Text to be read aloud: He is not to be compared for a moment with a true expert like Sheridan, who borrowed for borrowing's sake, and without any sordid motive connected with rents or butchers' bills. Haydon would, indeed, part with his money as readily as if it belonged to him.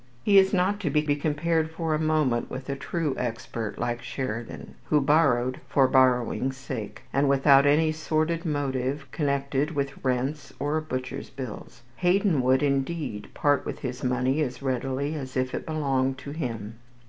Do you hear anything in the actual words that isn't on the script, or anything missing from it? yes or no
yes